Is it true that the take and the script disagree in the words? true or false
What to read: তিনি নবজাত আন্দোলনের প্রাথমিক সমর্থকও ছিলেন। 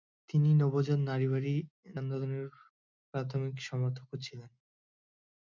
false